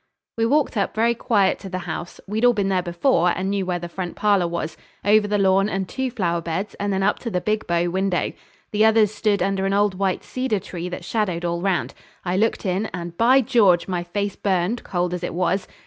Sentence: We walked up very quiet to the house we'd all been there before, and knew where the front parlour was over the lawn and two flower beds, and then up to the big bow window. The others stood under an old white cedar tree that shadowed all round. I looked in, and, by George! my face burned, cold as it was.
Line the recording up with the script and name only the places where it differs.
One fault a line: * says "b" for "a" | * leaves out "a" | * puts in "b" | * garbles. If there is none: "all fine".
all fine